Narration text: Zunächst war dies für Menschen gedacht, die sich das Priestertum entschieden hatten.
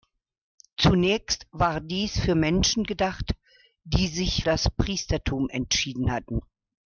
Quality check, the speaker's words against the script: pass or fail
pass